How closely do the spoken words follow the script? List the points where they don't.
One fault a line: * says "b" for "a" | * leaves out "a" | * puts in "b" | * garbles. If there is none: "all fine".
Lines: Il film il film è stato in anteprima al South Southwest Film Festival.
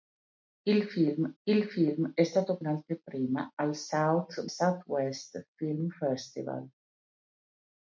all fine